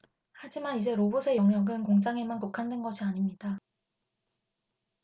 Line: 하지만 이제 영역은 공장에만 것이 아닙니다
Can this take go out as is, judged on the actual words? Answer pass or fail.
fail